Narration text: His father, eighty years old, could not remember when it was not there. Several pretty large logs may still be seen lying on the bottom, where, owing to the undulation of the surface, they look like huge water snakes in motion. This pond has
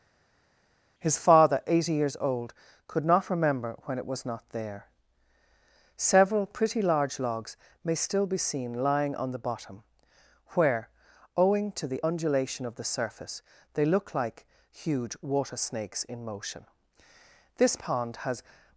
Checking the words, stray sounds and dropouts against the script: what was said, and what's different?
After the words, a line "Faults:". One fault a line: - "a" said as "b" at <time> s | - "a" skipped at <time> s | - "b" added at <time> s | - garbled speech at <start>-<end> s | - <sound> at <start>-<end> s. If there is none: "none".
His father, eighty years old, could not remember when it was not there. Several pretty large logs may still be seen lying on the bottom, where, owing to the undulation of the surface, they look like huge water snakes in motion. This pond has
Faults:
none